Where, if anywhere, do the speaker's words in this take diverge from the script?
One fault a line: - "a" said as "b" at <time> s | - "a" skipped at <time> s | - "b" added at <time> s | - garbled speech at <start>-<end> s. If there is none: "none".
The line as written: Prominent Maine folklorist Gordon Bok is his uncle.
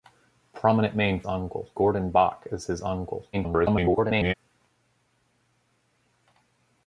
- "folklorist" said as "uncle" at 1.2 s
- garbled speech at 3.3-4.3 s